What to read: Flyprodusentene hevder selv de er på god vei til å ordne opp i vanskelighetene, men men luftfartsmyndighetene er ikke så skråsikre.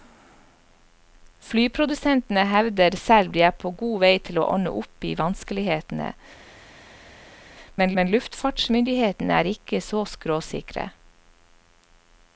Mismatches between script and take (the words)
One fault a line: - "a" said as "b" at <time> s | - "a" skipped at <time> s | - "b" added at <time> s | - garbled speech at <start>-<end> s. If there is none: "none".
none